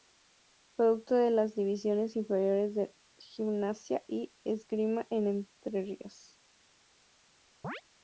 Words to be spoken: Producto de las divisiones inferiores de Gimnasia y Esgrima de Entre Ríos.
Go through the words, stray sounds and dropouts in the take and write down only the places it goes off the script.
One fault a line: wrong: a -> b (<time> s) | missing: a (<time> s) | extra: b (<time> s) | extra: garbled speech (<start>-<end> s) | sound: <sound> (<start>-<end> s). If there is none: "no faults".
sound: chirp (7.6-7.8 s)